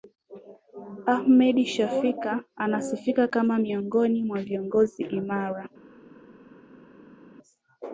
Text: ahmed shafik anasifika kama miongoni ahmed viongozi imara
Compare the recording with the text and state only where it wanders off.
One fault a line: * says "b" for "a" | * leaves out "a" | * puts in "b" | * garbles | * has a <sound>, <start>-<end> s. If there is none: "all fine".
* says "mwa" for "ahmed"